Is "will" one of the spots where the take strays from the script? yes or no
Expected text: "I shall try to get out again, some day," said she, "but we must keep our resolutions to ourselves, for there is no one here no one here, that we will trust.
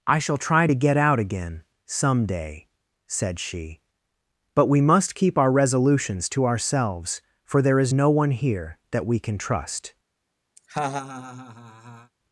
yes